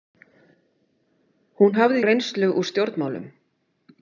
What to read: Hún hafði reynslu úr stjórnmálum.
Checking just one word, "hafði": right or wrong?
right